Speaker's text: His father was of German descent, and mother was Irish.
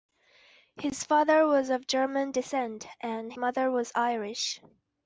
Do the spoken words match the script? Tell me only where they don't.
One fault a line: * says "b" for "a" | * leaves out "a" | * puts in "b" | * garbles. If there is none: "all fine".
all fine